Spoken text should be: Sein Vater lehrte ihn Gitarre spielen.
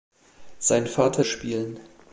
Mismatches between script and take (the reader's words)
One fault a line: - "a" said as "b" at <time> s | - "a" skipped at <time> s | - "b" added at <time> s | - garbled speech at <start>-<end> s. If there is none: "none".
- "lehrte ihn Gitarre" skipped at 1.2 s